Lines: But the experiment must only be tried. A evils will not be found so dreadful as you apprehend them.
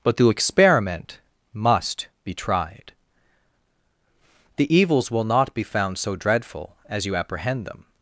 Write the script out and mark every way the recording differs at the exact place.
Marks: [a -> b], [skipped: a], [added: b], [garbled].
But the experiment must [skipped: only] be tried. [A -> The] evils will not be found so dreadful as you apprehend them.